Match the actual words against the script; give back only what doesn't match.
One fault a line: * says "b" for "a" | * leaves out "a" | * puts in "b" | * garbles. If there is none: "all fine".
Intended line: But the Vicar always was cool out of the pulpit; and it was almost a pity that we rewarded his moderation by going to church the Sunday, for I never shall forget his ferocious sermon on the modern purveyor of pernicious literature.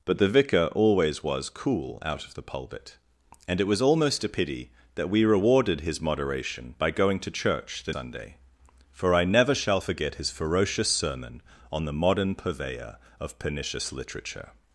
all fine